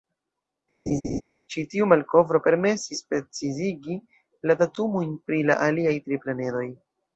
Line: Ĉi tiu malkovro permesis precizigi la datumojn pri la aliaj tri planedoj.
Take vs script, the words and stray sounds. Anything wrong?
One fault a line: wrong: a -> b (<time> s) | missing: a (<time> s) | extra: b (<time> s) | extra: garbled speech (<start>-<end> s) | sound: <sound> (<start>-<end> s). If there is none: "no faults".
sound: laugh (0.9-1.2 s)